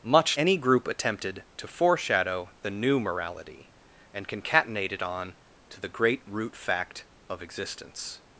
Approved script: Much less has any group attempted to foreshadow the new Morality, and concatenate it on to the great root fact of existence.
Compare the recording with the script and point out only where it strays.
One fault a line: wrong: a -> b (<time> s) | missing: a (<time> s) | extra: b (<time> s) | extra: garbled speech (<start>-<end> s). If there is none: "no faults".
missing: less has (0.3 s)